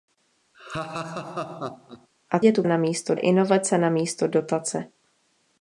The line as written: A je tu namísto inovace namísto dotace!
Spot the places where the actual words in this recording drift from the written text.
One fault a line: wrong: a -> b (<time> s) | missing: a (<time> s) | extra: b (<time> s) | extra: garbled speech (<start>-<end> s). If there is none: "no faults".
no faults